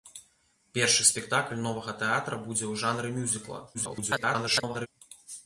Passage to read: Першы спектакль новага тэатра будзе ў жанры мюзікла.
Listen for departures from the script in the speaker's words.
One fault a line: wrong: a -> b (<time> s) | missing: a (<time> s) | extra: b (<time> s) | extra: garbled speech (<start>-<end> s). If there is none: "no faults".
extra: garbled speech (3.7-4.9 s)